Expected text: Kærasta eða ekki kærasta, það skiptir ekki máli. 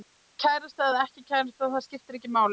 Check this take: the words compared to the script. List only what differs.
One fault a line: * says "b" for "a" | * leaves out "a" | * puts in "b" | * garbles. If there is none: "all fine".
all fine